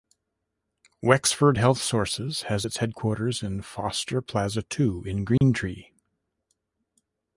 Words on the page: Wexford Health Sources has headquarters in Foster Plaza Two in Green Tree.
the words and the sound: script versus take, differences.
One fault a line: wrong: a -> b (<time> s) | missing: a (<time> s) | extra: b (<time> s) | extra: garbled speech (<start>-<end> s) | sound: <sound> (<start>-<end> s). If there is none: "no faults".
extra: its (2.6 s)
sound: dropout (5.4-5.4 s)